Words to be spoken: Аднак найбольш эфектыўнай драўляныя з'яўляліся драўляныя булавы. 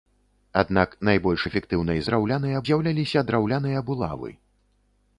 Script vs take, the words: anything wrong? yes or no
no